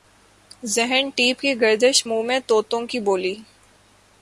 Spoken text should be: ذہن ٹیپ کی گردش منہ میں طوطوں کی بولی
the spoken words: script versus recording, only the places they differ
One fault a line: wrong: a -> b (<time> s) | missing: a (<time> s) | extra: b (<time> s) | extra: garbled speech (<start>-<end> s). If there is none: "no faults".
no faults